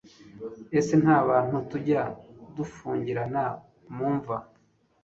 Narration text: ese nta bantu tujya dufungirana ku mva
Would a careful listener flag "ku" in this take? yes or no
yes